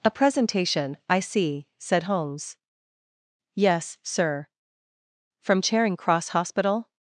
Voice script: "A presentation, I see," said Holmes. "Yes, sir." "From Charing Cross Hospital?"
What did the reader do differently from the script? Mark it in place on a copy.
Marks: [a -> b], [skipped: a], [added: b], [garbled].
"A presentation, I see," said Holmes. "Yes, sir." "From Charing Cross Hospital?"